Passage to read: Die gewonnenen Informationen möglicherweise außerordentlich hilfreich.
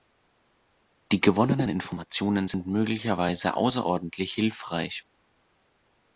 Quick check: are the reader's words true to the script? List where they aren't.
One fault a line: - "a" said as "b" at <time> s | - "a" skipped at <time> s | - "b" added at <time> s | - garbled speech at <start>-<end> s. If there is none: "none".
- "sind" added at 2.5 s